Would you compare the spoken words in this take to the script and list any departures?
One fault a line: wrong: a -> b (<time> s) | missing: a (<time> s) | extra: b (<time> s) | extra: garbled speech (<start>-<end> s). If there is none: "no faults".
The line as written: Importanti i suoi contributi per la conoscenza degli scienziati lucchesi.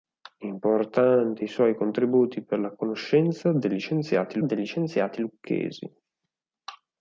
extra: degli scienziati (4.4 s)